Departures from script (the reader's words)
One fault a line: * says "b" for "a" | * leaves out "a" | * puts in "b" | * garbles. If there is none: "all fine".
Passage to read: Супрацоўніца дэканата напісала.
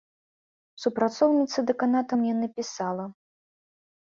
* puts in "мне"